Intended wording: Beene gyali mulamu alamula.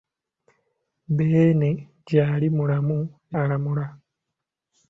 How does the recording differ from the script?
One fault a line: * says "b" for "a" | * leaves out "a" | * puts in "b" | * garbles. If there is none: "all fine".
all fine